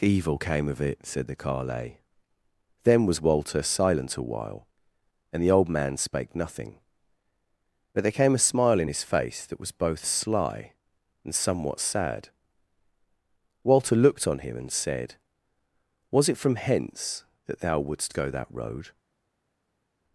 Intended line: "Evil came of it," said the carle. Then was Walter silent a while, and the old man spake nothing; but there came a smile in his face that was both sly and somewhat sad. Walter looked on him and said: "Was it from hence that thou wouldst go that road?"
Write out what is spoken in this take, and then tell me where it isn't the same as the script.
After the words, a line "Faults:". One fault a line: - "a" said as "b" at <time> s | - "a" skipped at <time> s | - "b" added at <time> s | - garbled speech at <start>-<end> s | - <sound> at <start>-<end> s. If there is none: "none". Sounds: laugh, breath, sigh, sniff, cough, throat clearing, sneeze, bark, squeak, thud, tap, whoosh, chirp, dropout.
"Evil came of it," said the carle. Then was Walter silent a while, and the old man spake nothing; but there came a smile in his face that was both sly and somewhat sad. Walter looked on him and said: "Was it from hence that thou wouldst go that road?"
Faults:
none